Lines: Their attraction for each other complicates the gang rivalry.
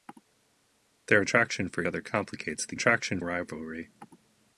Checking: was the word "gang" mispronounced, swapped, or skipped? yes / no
yes